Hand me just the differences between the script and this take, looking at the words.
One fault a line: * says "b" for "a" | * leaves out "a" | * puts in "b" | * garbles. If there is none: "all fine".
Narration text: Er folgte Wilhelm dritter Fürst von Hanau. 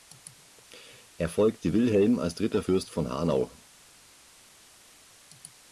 * puts in "als"